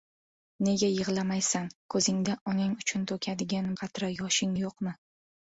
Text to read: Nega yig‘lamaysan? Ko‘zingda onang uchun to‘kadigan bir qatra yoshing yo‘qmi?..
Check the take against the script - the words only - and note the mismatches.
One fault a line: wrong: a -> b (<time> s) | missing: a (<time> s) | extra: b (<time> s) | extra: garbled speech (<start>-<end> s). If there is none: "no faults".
missing: bir (3.7 s)